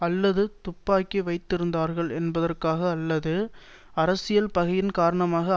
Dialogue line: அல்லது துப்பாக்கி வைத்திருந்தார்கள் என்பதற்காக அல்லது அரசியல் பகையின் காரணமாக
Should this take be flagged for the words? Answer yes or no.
no